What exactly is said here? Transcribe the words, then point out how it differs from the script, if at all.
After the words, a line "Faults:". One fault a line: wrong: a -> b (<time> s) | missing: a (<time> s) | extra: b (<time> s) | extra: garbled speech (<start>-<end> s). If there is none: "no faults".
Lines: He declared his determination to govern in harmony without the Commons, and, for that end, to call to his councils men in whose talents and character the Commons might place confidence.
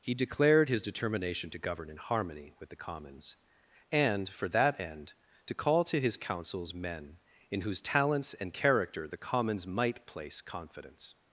He declared his determination to govern in harmony with the Commons, and, for that end, to call to his councils men in whose talents and character the Commons might place confidence.
Faults:
wrong: without -> with (2.6 s)